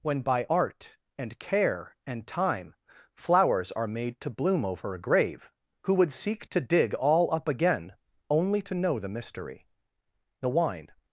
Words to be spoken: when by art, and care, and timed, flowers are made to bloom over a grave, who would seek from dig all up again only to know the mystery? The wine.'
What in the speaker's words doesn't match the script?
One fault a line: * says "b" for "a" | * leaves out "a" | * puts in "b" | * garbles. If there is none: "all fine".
* says "time" for "timed"
* says "to" for "from"